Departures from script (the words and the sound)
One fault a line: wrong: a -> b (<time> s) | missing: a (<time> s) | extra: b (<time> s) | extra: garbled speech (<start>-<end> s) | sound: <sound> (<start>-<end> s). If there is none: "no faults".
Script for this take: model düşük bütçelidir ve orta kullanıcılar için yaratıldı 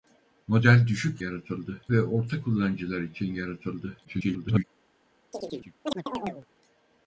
wrong: bütçelidir -> yaratıldı (1.2 s)
extra: garbled speech (4.0-4.6 s)
sound: chirp (5.3-6.5 s)